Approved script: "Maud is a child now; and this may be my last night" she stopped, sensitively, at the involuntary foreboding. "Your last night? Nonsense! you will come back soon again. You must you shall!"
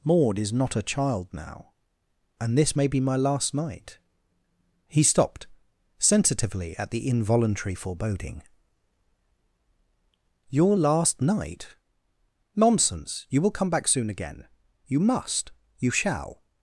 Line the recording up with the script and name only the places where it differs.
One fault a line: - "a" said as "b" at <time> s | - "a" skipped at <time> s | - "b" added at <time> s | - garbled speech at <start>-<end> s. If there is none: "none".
- "not" added at 0.5 s
- "she" said as "he" at 4.9 s